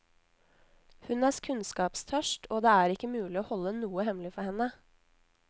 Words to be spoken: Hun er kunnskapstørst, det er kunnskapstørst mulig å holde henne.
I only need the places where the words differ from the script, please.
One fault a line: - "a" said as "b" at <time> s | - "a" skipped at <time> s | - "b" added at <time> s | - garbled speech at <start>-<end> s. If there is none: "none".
- "og" added at 2.5 s
- "kunnskapstørst" said as "ikke" at 3.0 s
- "noe hemmelig for" added at 3.8 s